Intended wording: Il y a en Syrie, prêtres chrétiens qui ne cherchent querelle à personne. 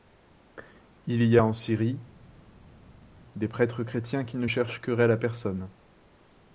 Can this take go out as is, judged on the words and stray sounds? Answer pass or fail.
fail